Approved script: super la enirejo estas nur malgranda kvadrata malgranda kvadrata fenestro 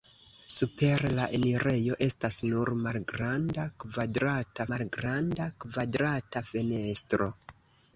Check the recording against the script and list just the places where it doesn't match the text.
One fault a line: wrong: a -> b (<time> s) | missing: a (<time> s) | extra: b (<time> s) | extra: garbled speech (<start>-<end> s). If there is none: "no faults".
no faults